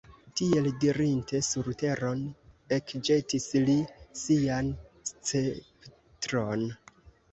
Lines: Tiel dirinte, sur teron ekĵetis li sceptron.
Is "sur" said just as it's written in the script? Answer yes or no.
yes